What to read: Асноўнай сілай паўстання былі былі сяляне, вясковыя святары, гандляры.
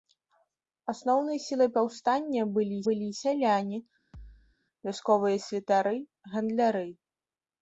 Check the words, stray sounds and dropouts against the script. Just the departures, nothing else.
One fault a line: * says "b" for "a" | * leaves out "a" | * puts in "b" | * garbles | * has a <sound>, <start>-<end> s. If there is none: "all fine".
* has a thud, 4.1-4.6 s